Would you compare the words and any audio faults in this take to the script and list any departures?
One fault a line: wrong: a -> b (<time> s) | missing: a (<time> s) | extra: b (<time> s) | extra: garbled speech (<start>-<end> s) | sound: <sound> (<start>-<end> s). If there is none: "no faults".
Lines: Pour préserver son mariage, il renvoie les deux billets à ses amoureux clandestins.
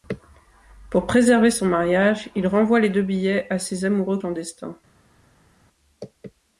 no faults